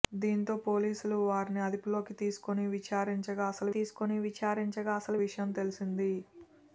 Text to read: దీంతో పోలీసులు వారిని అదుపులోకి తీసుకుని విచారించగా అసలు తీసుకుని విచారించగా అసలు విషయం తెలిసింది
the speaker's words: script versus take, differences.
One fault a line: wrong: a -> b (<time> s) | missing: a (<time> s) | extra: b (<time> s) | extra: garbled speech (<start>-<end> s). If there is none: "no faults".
no faults